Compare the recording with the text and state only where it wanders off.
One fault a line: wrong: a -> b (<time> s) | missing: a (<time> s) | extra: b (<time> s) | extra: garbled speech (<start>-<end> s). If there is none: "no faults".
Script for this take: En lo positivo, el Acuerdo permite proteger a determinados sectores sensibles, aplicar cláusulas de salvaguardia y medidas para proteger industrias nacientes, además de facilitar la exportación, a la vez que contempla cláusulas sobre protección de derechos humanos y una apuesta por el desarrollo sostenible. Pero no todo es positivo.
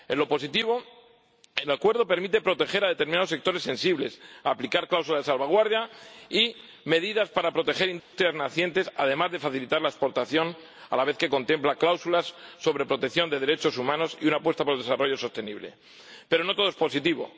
no faults